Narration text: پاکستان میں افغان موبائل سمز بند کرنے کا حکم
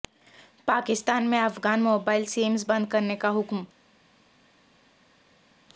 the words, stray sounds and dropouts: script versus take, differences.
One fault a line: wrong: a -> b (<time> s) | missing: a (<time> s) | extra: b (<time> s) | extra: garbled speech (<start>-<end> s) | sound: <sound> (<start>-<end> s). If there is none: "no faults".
no faults